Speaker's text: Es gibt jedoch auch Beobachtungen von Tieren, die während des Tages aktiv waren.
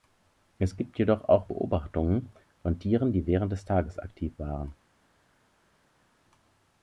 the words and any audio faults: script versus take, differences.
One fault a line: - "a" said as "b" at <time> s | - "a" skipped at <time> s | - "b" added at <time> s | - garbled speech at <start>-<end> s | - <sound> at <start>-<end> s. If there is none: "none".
none